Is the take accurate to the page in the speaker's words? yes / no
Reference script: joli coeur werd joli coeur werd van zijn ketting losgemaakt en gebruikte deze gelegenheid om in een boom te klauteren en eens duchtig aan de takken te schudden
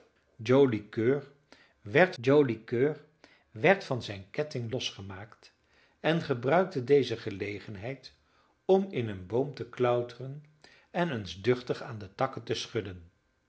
yes